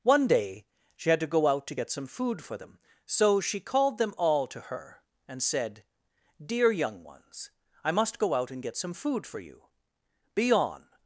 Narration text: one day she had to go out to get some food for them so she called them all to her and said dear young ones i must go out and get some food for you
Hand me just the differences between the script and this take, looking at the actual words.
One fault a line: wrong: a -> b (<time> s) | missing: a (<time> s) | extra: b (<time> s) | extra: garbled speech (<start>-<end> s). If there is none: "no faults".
extra: be on (10.3 s)